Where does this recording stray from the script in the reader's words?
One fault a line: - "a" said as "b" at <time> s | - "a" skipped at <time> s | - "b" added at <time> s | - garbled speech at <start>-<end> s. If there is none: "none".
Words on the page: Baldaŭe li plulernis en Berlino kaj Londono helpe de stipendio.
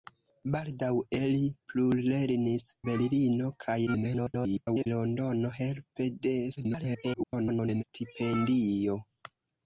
- "en" skipped at 2.6 s
- garbled speech at 3.9-4.9 s
- garbled speech at 6.6-7.8 s